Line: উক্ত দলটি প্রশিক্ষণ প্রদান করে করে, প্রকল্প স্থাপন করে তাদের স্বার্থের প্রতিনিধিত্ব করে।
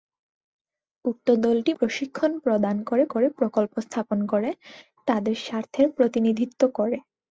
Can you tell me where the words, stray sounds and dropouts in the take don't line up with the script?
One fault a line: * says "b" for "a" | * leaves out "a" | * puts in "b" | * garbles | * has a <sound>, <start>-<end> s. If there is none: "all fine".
all fine